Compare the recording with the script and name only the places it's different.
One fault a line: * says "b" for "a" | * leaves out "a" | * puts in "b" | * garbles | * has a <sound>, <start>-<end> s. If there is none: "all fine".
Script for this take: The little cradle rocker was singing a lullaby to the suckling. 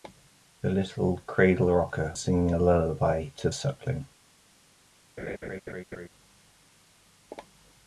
* leaves out "was"
* leaves out "the"
* has a laugh, 5.2-6.1 s